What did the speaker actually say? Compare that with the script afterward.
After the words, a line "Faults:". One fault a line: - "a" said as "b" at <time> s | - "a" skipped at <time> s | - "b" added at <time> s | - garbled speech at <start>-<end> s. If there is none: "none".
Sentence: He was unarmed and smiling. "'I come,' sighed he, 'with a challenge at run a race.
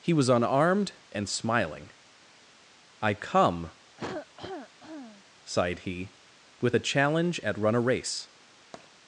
He was unarmed and smiling. "'I come,' sighed he, 'with a challenge at run a race.
Faults:
none